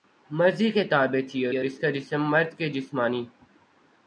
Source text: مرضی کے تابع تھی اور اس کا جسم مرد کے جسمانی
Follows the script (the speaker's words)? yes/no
no